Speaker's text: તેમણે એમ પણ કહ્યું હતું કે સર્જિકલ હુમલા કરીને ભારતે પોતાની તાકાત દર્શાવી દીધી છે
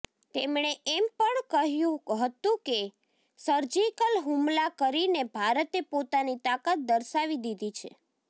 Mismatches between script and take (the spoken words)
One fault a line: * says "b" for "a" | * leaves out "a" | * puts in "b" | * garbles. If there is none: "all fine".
all fine